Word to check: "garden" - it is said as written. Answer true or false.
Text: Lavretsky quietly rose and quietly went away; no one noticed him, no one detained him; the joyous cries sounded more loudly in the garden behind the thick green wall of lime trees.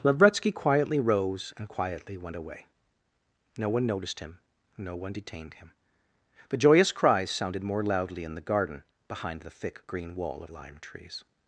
true